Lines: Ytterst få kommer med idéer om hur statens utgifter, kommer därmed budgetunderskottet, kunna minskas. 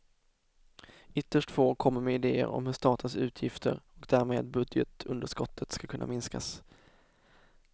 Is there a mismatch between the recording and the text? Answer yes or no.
yes